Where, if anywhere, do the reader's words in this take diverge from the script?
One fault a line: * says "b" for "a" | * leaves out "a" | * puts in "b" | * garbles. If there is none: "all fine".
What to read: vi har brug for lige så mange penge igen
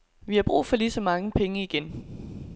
all fine